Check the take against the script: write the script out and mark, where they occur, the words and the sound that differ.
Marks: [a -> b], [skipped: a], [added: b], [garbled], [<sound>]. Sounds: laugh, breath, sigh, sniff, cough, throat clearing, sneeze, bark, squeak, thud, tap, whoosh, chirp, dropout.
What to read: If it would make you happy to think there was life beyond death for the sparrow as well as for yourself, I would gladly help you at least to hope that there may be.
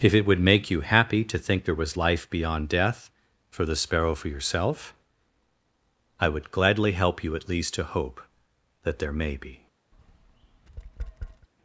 If it would make you happy to think there was life beyond death for the sparrow [skipped: as well as] for yourself, I would gladly help you at least to hope that there may be. [tap]